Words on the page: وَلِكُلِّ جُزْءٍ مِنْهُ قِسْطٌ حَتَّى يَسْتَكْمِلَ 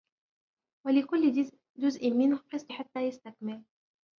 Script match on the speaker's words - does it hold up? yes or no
yes